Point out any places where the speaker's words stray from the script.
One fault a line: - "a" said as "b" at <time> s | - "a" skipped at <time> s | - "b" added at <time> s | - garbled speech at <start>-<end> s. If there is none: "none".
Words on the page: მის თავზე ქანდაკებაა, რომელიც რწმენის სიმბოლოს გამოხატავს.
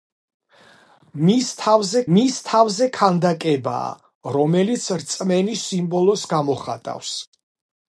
- "მის თავზე" added at 2.2 s